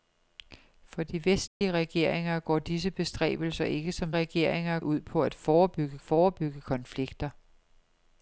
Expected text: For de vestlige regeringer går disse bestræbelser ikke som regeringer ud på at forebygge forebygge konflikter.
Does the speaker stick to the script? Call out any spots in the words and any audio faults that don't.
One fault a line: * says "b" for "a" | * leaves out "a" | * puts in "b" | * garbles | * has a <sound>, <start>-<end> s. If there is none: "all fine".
* has a dropout, 1.5-1.6 s